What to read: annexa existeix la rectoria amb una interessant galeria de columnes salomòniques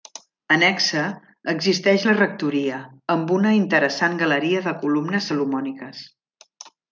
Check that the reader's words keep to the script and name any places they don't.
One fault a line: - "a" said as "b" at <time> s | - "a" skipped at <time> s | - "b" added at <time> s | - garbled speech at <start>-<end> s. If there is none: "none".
none